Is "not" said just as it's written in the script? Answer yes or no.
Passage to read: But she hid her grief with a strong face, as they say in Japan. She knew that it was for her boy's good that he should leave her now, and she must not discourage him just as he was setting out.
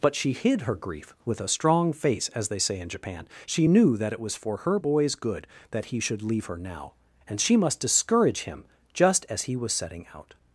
no